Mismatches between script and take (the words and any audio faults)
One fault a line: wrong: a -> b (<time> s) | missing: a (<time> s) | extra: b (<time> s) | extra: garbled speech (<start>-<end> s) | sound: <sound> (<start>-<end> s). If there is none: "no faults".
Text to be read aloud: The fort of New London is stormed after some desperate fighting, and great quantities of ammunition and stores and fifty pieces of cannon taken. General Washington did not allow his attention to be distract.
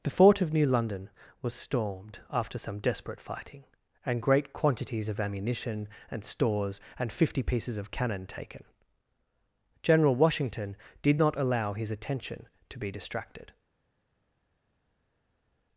wrong: is -> was (1.4 s)
wrong: distract -> distracted (12.9 s)